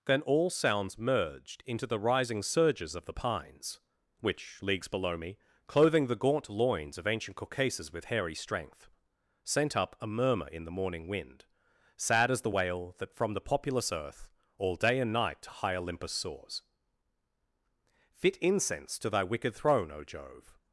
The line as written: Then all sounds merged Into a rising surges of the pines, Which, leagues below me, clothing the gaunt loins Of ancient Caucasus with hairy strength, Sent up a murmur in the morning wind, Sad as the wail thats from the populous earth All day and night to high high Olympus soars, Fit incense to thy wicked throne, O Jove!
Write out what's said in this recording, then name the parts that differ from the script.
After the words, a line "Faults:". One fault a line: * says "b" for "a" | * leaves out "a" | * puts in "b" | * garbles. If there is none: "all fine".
Then all sounds merged Into the rising surges of the pines, Which, leagues below me, clothing the gaunt loins Of ancient Caucasus with hairy strength, Sent up a murmur in the morning wind, Sad as the wail that from the populous earth All day and night to high Olympus soars, Fit incense to thy wicked throne, O Jove!
Faults:
* says "the" for "a"
* says "that" for "thats"
* leaves out "high"